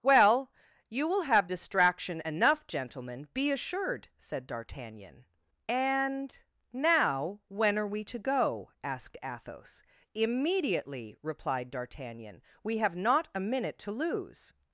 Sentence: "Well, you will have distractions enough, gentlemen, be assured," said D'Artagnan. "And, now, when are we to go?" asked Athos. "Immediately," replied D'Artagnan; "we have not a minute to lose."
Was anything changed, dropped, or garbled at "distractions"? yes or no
yes